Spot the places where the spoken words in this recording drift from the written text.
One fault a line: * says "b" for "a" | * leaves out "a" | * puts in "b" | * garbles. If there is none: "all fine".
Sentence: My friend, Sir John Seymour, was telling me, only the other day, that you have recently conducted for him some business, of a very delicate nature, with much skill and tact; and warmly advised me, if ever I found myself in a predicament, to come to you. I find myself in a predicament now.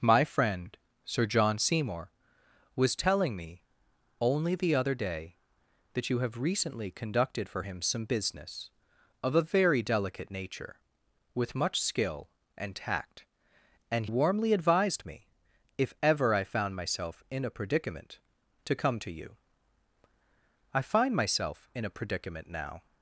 all fine